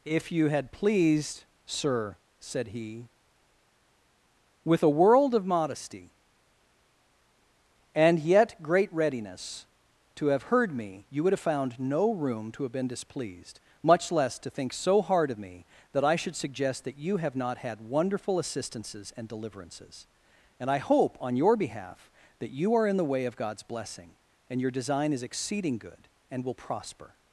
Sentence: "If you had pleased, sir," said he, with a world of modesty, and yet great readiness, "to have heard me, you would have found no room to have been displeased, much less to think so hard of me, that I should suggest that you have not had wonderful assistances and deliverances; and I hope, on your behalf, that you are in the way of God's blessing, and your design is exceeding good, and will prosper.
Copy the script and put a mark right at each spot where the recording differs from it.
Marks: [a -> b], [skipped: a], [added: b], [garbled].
"If you had pleased, sir," said he, with a world of modesty, and yet great readiness, "to have heard me, you would have found no room to have been displeased, much less to think so hard of me, that I should suggest that you have not had wonderful assistances and deliverances; and I hope, on your behalf, that you are in the way of God's blessing, and your design is exceeding good, and will prosper.